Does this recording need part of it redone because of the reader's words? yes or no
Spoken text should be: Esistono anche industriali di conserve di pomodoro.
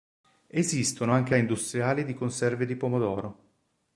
no